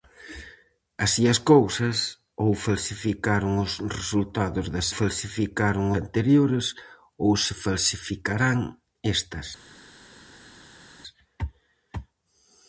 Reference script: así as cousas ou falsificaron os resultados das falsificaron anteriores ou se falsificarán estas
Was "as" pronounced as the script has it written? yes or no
yes